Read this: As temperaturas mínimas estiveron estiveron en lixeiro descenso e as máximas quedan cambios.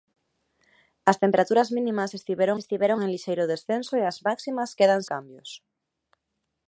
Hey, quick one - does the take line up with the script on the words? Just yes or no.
yes